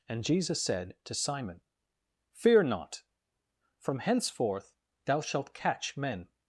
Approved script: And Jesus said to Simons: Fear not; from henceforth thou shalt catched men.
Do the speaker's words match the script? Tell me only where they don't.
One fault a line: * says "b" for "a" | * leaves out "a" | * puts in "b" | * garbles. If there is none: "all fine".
* says "Simon" for "Simons"
* says "catch" for "catched"